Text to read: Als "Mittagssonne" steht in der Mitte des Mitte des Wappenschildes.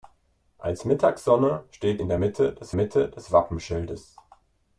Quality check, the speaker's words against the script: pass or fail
pass